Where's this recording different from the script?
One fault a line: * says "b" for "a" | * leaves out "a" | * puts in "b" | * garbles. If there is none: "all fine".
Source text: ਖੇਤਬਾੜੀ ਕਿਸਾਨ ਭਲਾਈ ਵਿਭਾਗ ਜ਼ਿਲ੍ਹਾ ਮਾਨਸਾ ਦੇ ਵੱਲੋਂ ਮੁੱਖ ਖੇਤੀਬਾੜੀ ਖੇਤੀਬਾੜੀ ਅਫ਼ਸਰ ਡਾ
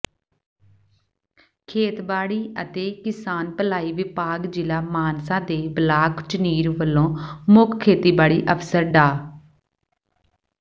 * puts in "ਅਤੇ"
* puts in "ਬਲਾਕ ਝੁਨੀਰ"
* leaves out "ਖੇਤੀਬਾੜੀ"